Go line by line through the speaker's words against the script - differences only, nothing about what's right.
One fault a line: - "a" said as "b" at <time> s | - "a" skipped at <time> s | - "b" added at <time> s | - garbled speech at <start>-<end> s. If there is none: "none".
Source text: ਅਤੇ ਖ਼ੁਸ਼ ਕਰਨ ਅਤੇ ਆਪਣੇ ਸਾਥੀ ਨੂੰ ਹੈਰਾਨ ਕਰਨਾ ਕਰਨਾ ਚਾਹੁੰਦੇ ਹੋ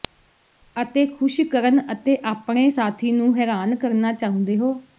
- "ਕਰਨਾ" skipped at 4.1 s